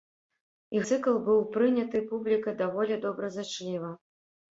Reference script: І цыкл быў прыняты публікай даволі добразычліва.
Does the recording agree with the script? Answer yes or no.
yes